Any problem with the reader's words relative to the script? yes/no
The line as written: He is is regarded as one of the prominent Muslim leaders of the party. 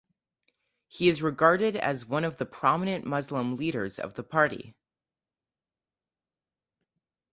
yes